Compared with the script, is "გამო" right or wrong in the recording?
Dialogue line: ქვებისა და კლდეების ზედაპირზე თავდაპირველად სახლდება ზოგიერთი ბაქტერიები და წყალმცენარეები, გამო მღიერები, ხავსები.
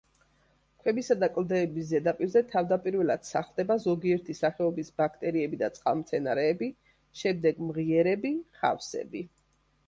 wrong